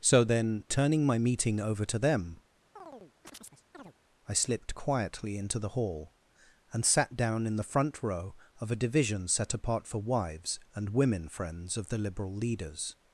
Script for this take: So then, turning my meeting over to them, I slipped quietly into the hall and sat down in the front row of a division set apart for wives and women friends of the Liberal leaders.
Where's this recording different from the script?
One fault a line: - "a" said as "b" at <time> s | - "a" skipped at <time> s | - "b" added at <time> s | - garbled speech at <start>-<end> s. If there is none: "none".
none